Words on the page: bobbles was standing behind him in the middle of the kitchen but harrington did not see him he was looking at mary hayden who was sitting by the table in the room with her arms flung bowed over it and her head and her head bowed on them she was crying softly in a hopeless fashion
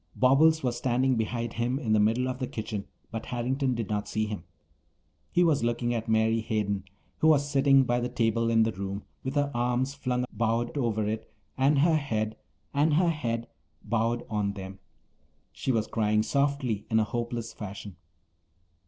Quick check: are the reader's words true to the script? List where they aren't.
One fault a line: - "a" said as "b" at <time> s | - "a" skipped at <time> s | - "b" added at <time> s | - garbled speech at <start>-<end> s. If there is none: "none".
none